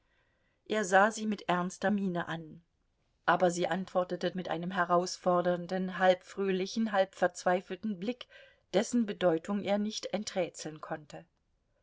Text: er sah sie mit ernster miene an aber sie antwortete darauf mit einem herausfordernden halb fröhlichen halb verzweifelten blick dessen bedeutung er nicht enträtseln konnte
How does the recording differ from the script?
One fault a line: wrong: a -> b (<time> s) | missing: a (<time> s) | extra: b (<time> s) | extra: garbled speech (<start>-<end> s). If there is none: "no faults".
missing: darauf (4.3 s)